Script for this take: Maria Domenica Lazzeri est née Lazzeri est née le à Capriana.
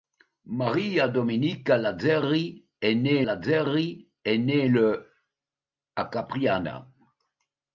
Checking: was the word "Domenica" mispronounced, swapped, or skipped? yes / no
no